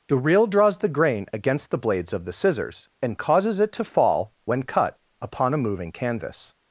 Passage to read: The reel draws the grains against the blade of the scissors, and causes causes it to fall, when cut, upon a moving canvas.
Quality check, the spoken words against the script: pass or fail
fail